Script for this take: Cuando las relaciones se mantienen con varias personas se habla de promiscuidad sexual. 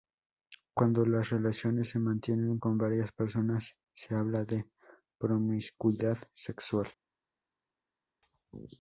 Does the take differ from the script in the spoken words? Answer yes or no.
no